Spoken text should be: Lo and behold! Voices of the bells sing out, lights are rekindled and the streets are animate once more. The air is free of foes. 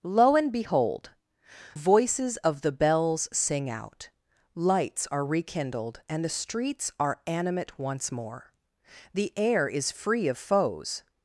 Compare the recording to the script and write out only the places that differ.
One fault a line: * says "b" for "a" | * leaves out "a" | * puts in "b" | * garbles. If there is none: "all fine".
all fine